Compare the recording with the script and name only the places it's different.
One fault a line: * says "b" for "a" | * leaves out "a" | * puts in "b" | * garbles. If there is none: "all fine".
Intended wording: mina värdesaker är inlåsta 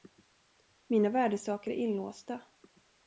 all fine